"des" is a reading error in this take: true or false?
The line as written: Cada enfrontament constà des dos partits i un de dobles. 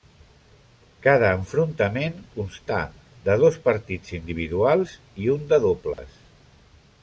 true